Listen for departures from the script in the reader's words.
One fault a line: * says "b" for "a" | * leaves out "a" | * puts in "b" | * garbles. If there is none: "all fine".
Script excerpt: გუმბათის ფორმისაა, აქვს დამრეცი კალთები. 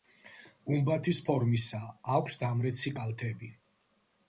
all fine